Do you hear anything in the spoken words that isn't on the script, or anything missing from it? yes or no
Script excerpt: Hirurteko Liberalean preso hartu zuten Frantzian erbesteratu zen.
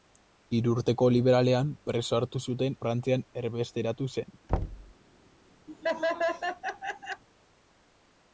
no